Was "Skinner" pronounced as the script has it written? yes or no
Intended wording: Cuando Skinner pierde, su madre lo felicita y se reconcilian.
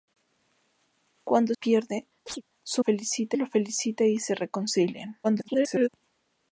no